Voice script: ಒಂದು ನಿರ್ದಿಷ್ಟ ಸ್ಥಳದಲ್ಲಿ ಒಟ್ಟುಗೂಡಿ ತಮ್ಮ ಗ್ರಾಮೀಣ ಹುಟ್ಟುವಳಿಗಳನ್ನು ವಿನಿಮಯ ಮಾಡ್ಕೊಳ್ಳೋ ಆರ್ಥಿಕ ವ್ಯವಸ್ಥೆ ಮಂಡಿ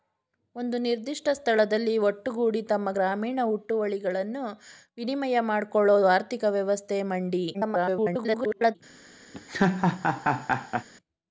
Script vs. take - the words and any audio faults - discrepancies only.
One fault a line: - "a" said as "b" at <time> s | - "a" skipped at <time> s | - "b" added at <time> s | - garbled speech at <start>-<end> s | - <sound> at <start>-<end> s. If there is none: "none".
- garbled speech at 7.5-8.8 s
- laugh at 9.3-10.9 s